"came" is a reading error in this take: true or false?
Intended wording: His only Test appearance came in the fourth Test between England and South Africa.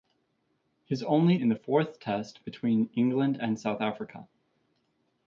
true